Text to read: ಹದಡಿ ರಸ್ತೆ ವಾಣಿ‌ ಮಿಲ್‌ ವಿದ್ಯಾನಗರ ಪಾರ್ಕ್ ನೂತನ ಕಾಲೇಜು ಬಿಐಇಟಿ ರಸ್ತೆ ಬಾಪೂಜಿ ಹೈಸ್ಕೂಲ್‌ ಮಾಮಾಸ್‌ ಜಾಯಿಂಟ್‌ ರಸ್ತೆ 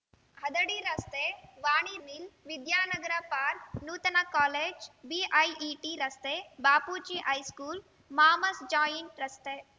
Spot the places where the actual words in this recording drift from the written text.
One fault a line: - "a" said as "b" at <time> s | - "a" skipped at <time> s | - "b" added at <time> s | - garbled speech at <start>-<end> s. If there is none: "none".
none